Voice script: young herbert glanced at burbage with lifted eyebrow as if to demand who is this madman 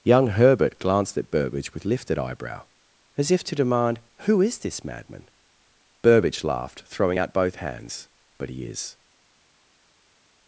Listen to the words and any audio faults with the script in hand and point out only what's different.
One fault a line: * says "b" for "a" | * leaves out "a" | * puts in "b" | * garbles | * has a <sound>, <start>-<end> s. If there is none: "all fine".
* puts in "burbage laughed throwing out both hands but he is"